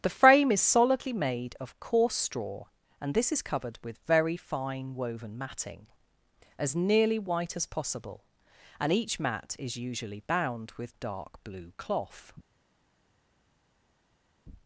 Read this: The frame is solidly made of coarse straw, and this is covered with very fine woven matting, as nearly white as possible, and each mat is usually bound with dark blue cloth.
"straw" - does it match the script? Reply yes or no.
yes